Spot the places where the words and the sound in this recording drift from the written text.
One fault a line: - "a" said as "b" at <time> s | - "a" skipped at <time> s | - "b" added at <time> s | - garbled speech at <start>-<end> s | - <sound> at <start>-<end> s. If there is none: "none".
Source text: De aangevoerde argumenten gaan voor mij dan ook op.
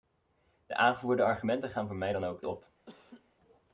- laugh at 2.9-3.3 s